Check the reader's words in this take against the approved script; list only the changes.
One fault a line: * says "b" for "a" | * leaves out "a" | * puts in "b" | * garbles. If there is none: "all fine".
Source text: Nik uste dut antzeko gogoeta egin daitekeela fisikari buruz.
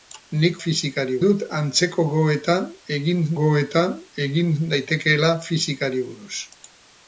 * says "fisikari" for "uste"
* puts in "gogoeta egin"